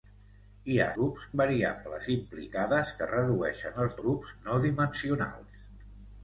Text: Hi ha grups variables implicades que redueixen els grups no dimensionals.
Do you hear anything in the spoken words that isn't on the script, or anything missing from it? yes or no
no